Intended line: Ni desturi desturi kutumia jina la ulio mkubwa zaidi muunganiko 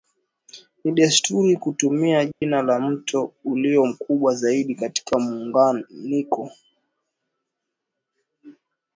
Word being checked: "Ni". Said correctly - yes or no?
yes